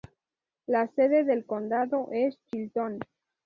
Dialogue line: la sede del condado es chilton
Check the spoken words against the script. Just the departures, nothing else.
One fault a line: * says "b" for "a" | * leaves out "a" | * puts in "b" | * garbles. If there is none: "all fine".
all fine